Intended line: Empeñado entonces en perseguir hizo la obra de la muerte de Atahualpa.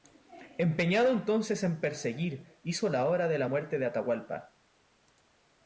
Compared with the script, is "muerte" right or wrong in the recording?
right